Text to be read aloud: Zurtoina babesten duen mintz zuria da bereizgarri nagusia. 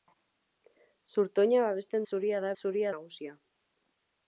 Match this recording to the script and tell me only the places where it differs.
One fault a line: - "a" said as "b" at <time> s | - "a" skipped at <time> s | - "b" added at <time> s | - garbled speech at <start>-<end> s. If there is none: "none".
- "duen mintz" skipped at 2.1 s
- "bereizgarri" said as "zuria" at 2.6 s